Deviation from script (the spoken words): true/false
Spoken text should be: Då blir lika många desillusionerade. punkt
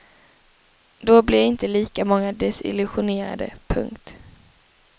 true